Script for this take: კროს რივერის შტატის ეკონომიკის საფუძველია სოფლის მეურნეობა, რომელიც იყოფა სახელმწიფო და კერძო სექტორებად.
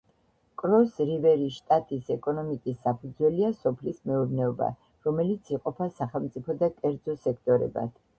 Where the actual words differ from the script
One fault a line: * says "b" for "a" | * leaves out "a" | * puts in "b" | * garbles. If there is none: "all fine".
all fine